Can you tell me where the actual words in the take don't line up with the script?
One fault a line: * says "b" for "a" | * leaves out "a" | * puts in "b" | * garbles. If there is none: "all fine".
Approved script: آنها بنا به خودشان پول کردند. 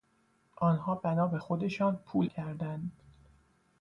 all fine